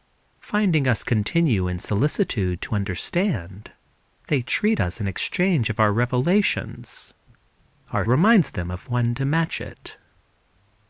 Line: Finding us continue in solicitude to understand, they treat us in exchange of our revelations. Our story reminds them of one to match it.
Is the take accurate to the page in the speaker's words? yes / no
no